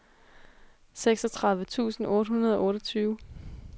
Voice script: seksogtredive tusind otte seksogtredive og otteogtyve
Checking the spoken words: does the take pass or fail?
fail